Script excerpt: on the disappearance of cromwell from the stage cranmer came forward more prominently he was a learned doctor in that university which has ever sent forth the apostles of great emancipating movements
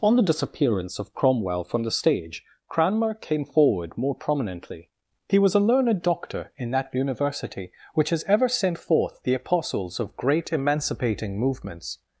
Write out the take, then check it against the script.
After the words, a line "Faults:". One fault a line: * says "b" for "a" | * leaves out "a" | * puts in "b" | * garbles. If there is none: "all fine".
on the disappearance of cromwell from the stage cranmer came forward more prominently he was a learned doctor in that university which has ever sent forth the apostles of great emancipating movements
Faults:
all fine